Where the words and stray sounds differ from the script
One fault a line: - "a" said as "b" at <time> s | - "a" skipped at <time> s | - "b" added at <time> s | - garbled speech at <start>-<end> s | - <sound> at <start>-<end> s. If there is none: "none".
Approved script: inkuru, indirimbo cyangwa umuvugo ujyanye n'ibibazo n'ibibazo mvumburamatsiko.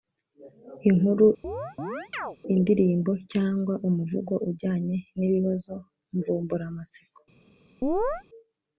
- chirp at 1.4-2.4 s
- "n'ibibazo" skipped at 5.7 s
- chirp at 7.8-8.2 s